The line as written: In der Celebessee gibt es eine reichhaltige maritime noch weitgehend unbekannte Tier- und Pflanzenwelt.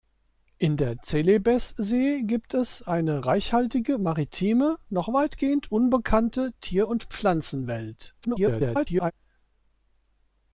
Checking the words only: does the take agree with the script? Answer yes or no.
no